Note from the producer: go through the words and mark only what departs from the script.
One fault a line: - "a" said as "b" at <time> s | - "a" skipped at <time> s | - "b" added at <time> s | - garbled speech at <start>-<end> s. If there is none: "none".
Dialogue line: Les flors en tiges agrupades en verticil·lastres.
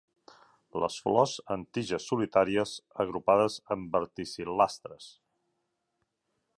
- "solitàries" added at 2.1 s